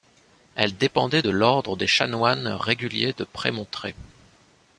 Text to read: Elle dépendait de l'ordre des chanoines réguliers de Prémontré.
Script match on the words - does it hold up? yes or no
yes